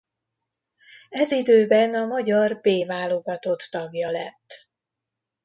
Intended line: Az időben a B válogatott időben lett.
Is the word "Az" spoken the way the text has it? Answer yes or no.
no